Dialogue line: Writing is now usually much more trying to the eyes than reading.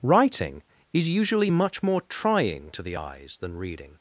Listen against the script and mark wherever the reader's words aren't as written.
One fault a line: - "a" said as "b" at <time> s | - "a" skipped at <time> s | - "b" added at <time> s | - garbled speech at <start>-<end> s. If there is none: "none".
- "now" skipped at 1.1 s